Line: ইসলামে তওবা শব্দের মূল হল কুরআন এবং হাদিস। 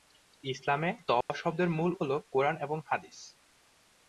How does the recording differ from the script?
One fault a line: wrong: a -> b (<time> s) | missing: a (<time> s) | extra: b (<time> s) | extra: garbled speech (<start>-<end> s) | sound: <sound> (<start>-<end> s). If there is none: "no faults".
sound: dropout (1.2-1.3 s)